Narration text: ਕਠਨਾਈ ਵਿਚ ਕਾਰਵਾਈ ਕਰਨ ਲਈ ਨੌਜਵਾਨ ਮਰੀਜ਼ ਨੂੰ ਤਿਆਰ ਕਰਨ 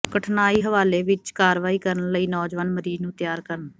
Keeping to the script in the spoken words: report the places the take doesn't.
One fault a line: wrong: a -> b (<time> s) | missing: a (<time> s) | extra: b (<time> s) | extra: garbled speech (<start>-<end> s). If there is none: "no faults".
extra: ਹਵਾਲੇ (0.6 s)